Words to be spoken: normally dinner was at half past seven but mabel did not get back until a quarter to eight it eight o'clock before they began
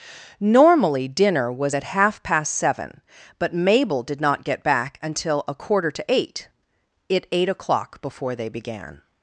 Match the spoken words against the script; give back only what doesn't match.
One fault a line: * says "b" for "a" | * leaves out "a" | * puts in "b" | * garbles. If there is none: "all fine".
all fine